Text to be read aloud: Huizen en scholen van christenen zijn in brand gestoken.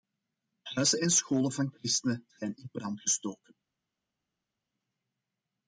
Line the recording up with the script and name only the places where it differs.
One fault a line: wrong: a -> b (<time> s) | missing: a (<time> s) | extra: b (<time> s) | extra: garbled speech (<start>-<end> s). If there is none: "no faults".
no faults